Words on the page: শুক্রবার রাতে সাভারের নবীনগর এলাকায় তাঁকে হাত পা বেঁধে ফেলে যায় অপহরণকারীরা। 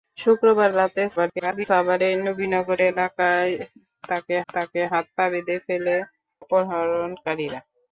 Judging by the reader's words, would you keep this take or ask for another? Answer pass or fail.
fail